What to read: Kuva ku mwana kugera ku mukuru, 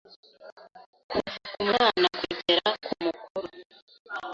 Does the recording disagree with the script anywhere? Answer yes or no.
no